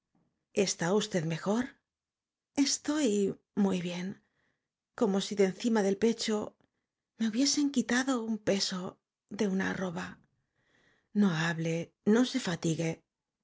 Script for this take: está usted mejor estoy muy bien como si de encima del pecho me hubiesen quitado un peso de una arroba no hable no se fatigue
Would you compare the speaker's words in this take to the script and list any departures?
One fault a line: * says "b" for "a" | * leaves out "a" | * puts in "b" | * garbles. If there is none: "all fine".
all fine